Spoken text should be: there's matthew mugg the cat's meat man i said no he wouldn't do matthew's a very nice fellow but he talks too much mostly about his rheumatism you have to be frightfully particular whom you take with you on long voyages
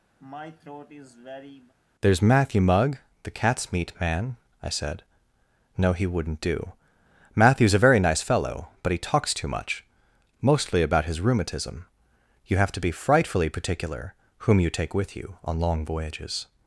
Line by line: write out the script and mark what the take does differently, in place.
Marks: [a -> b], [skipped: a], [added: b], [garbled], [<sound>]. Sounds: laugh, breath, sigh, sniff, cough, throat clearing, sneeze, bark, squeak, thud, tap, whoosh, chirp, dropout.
[throat clearing] there's matthew mugg the cat's meat man i said no he wouldn't do matthew's a very nice fellow but he talks too much mostly about his rheumatism you have to be frightfully particular whom you take with you on long voyages